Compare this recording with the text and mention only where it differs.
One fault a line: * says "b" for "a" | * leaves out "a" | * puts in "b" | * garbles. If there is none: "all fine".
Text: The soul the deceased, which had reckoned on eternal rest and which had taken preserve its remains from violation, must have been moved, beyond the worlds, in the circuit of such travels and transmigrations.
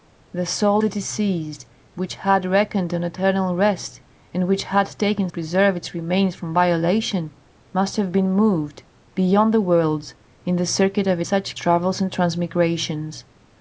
all fine